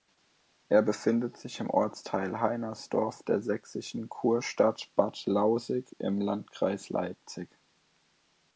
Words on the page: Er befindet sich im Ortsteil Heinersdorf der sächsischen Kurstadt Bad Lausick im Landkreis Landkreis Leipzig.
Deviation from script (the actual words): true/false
true